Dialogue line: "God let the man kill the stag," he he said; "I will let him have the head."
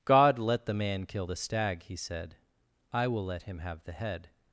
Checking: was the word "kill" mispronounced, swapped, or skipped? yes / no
no